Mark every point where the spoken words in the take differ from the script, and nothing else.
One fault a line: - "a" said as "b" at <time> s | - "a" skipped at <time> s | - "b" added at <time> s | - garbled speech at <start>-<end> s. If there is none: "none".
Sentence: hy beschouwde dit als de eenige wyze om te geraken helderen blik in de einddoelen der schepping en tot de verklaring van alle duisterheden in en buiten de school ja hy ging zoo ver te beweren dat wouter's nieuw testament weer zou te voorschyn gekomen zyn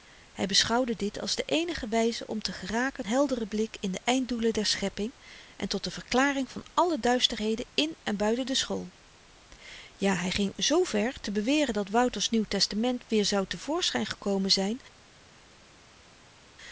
none